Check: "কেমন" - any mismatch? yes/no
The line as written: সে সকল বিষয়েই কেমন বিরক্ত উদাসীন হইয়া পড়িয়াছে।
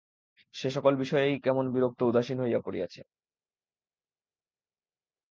no